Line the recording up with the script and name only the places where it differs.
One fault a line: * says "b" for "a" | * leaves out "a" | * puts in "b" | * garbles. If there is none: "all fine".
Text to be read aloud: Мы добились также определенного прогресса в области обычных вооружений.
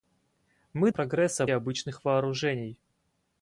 * leaves out "добились также определенного"
* leaves out "области"